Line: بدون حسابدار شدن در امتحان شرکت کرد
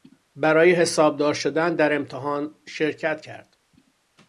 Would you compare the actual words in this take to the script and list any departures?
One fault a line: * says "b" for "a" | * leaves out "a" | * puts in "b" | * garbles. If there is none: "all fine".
* says "برای" for "بدون"